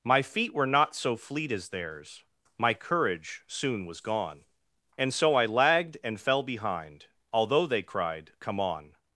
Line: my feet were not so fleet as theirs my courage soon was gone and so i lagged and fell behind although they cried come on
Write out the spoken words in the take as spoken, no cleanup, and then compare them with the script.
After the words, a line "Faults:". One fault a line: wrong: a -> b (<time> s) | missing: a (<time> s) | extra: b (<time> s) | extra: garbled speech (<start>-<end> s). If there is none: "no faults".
my feet were not so fleet as theirs my courage soon was gone and so i lagged and fell behind although they cried come on
Faults:
no faults